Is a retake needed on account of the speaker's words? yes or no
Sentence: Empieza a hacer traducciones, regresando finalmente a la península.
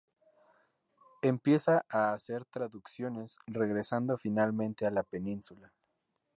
no